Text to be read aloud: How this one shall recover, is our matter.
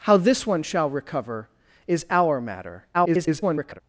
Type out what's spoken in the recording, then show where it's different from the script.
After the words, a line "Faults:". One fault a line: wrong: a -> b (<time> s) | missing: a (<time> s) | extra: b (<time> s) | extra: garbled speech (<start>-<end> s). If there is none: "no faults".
How this one shall recover, is our matter. [garbled]
Faults:
extra: garbled speech (2.9-3.8 s)